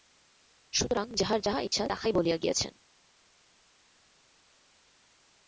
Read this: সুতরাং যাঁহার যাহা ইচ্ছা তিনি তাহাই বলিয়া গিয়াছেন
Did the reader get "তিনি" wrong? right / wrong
wrong